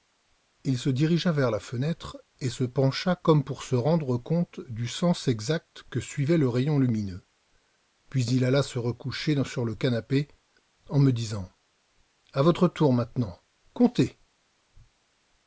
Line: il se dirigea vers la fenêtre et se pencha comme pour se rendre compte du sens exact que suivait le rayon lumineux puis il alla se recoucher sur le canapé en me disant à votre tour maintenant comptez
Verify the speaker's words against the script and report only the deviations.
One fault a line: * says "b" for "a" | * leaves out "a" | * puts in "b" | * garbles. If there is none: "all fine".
all fine